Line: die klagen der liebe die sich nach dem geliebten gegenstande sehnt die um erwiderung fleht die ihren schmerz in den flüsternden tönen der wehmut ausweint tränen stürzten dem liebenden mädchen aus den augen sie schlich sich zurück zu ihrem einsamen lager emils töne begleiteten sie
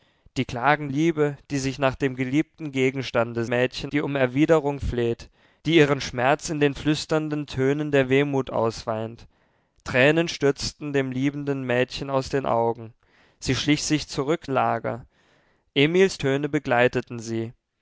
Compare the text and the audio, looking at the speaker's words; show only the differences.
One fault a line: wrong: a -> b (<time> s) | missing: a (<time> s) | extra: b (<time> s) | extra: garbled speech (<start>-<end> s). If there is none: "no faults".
missing: der (0.9 s)
wrong: sehnt -> mädchen (3.5 s)
missing: zu ihrem einsamen (14.5 s)